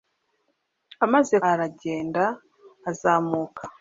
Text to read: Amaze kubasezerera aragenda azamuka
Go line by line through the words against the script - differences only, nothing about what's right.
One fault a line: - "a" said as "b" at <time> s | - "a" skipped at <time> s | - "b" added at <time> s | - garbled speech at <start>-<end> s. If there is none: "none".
- "kubasezerera" skipped at 1.4 s